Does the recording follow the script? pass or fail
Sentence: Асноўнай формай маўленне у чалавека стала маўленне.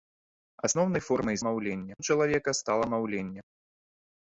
pass